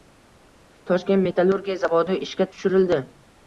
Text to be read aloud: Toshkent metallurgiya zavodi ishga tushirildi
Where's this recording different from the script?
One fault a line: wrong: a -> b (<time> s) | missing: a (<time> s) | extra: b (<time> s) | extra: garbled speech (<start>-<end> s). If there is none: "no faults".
no faults